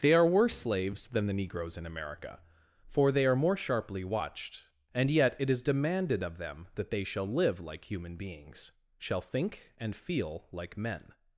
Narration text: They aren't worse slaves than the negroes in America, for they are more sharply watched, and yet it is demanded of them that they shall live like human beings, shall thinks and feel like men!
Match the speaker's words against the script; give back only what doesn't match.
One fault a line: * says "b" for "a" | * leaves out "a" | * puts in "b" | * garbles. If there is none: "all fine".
* says "are" for "aren't"
* says "think" for "thinks"